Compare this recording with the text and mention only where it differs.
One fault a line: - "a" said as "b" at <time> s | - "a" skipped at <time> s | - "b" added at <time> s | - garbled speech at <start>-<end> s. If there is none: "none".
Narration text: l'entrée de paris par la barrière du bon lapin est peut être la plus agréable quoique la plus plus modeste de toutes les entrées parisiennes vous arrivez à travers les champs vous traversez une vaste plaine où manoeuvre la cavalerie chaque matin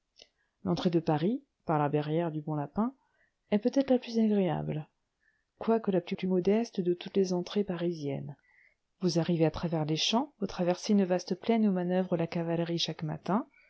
none